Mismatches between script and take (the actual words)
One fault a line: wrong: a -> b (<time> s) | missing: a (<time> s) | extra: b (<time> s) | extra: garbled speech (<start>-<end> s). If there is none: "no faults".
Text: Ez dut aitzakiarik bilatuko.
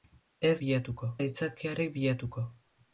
wrong: dut -> bilatuko (0.6 s)